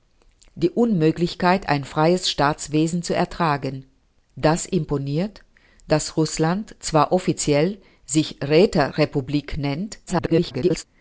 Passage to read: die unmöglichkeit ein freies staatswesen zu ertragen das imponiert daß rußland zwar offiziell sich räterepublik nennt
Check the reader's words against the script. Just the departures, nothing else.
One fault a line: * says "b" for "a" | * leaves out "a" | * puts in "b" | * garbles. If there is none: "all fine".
* garbles